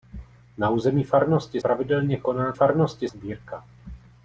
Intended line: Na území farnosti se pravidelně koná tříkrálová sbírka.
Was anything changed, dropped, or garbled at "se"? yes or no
yes